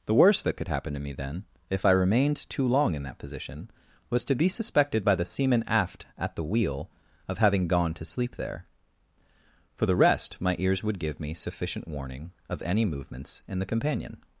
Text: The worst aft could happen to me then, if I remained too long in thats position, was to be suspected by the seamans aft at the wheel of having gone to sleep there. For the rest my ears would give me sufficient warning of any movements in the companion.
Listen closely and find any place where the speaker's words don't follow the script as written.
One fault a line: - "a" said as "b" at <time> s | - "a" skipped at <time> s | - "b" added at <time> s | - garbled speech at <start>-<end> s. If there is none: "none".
- "aft" said as "that" at 0.4 s
- "thats" said as "that" at 3.0 s
- "seamans" said as "seaman" at 5.2 s